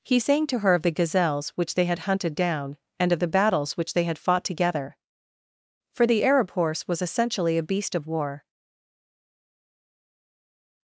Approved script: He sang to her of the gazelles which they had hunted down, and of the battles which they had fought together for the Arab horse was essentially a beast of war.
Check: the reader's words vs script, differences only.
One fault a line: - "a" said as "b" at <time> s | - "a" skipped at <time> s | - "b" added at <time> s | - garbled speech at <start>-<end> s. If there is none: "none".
none